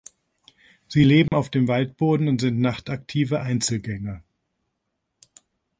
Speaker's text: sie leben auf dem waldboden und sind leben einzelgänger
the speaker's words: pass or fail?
fail